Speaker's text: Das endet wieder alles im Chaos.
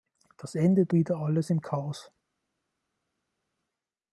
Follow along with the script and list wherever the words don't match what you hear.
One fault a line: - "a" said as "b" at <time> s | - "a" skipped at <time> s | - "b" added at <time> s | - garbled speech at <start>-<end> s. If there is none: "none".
none